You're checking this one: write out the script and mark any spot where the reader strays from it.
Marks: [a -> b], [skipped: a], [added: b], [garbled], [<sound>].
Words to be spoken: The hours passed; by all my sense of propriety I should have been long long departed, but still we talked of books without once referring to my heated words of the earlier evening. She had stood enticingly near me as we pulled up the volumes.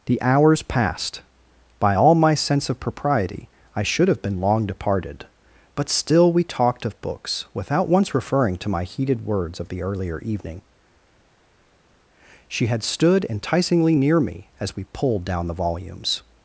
The hours passed; by all my sense of propriety I should have been long [skipped: long] departed, but still we talked of books without once referring to my heated words of the earlier evening. She had stood enticingly near me as we pulled [up -> down] the volumes.